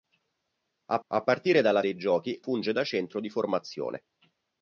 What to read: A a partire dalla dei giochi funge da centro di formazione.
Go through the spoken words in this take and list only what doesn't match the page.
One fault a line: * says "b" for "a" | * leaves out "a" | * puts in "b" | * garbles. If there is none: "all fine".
all fine